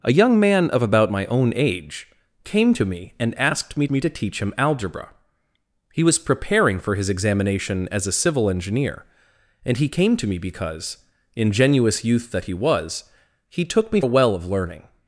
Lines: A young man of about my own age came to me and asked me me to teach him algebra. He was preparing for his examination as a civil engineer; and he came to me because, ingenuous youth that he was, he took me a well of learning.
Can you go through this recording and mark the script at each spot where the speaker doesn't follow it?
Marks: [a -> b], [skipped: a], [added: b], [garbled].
A young man of about my own age came to me and asked me me to teach him algebra. He was preparing for his examination as a civil engineer; and he came to me because, ingenuous youth that he was, he took me a well of learning.